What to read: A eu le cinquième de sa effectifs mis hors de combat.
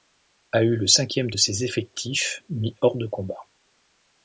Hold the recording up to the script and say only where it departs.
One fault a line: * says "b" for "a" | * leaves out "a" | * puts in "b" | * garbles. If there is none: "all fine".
* says "ses" for "sa"